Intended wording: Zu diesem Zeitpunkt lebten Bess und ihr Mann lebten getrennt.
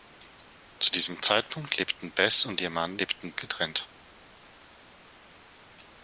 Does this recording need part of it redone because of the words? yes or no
no